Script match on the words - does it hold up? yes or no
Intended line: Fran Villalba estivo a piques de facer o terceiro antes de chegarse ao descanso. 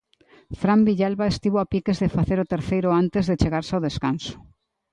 yes